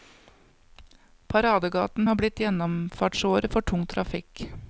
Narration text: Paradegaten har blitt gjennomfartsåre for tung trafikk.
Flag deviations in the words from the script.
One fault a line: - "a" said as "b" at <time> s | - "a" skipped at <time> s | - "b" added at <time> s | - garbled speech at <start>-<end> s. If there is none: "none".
none